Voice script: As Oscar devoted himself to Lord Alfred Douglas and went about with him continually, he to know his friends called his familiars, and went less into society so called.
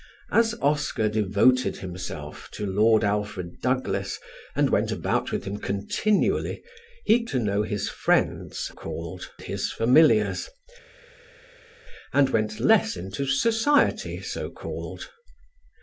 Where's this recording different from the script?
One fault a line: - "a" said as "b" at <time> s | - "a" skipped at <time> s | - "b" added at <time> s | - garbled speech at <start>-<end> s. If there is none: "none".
none